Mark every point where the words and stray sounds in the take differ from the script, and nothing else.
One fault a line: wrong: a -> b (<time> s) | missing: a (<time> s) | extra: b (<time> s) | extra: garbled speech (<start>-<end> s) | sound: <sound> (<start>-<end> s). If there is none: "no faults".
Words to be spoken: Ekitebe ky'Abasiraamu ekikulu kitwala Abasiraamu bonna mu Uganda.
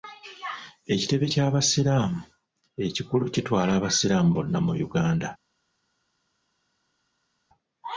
no faults